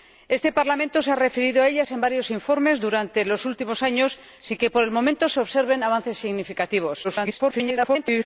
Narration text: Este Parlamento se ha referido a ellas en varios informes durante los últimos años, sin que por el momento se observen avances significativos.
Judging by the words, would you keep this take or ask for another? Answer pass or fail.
fail